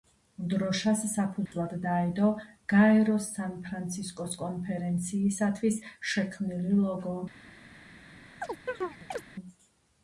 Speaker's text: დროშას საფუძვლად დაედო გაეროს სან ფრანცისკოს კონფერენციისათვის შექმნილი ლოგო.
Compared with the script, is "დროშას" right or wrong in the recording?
right